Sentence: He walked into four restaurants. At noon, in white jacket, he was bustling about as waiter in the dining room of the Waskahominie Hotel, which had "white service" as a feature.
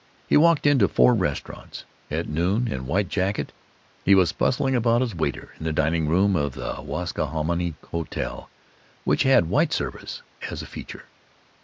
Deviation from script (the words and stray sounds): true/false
false